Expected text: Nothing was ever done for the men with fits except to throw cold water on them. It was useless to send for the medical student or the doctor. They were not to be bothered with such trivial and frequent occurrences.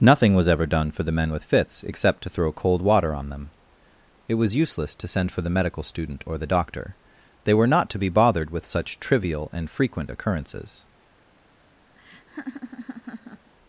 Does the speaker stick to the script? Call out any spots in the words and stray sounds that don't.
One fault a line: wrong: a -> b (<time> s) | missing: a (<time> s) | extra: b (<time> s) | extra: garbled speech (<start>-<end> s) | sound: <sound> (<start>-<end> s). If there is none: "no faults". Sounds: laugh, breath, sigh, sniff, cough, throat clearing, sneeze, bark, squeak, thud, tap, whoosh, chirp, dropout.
sound: laugh (12.0-13.5 s)